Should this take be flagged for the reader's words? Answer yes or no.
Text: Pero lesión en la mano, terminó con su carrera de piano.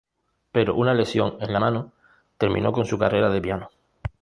yes